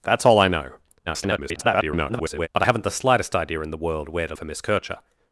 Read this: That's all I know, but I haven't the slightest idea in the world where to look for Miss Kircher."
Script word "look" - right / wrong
wrong